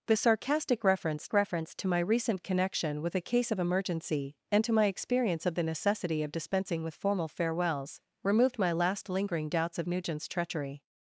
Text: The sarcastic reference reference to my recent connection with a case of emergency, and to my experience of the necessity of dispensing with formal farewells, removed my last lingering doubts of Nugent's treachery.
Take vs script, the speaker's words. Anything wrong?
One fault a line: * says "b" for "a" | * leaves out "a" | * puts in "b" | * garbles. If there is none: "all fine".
all fine